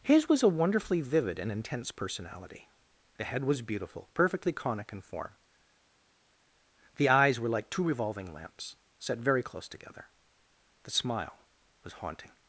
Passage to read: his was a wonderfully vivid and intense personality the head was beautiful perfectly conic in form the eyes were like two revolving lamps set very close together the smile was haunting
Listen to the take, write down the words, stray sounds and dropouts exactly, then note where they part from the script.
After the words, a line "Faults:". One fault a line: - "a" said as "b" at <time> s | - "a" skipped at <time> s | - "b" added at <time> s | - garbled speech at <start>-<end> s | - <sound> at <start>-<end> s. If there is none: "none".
his was a wonderfully vivid and intense personality the head was beautiful perfectly conic in form the eyes were like two revolving lamps set very close together the smile was haunting
Faults:
none